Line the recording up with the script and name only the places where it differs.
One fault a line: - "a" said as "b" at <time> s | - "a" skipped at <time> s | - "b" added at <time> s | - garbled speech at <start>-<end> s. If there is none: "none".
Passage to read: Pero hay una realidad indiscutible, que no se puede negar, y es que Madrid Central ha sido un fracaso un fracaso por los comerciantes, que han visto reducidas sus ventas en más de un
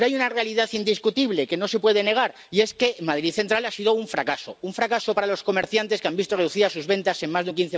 - "por" said as "para" at 5.1 s